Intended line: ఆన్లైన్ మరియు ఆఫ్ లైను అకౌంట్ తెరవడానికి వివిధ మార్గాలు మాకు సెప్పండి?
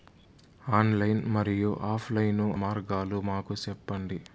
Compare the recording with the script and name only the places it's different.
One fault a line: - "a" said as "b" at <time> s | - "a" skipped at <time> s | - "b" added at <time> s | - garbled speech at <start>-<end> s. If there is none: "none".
- "అకౌంట్ తెరవడానికి వివిధ" skipped at 2.5 s